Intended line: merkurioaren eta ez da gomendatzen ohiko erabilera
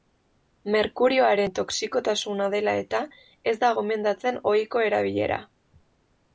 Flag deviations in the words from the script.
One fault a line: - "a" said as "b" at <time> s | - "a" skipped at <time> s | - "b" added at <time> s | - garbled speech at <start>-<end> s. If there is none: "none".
- "toxikotasuna dela" added at 1.6 s